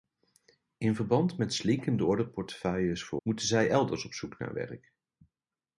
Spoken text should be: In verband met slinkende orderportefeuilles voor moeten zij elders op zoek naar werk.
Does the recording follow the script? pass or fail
pass